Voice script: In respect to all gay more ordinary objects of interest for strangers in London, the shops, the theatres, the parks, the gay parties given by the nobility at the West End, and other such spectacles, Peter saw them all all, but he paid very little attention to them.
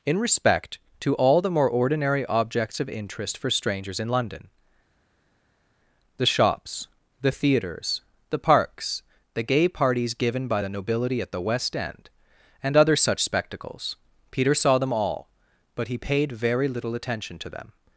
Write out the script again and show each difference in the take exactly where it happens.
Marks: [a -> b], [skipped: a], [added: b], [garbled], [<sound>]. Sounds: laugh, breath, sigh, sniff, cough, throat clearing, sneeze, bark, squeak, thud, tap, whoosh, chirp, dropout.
In respect to all [gay -> the] more ordinary objects of interest for strangers in London, the shops, the theatres, the parks, the gay parties given by the nobility at the West End, and other such spectacles, Peter saw them all [skipped: all,] but he paid very little attention to them.